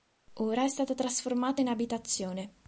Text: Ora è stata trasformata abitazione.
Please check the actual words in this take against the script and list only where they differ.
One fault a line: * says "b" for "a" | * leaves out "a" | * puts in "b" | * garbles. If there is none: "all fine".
* puts in "in"